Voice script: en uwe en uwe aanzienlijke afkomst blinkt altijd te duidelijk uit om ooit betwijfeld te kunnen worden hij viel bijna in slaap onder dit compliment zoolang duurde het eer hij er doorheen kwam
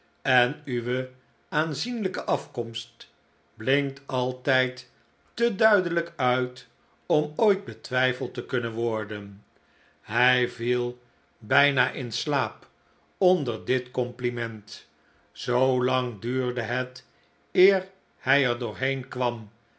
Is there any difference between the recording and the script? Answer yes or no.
yes